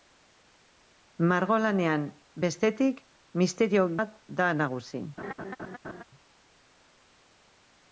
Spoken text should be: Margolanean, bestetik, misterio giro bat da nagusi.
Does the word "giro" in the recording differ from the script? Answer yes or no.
yes